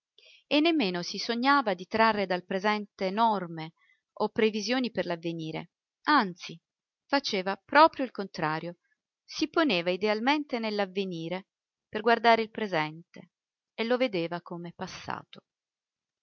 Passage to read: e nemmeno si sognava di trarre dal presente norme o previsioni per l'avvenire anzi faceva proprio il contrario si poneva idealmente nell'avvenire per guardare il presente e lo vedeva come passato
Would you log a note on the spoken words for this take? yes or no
no